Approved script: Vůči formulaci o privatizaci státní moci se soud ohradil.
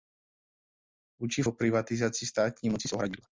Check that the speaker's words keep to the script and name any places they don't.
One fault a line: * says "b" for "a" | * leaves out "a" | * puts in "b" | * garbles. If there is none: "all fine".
* leaves out "formulaci"
* leaves out "soud"